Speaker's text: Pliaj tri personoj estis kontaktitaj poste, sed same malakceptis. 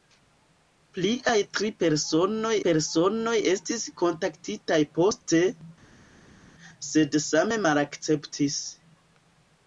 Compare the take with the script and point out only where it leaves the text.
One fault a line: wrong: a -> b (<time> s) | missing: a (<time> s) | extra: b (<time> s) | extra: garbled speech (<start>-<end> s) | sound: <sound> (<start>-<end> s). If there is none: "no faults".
extra: personoj (2.7 s)